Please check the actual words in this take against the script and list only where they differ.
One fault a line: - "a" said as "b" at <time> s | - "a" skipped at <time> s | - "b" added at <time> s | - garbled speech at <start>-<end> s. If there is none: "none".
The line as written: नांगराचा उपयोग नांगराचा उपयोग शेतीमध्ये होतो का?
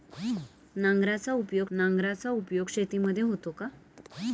none